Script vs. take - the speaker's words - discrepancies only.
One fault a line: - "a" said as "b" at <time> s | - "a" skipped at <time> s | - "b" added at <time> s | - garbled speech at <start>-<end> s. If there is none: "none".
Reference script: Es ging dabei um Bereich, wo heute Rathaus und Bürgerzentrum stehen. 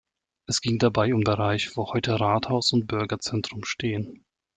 none